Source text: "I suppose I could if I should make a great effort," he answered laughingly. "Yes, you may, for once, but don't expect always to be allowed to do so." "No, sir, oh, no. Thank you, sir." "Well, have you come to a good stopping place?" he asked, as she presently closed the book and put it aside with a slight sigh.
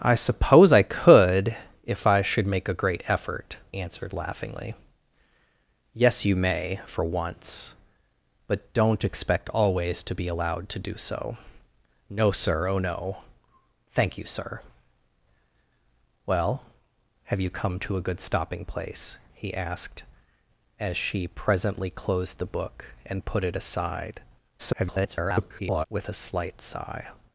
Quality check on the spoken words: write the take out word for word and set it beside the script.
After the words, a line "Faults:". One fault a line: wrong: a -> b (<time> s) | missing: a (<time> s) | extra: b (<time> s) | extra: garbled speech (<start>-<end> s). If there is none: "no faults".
"I suppose I could if I should make a great effort," answered laughingly. "Yes, you may, for once, but don't expect always to be allowed to do so." "No, sir, oh, no. Thank you, sir." "Well, have you come to a good stopping place?" he asked, as she presently closed the book and put it aside [garbled] with a slight sigh.
Faults:
missing: he (3.6 s)
extra: garbled speech (24.6-25.9 s)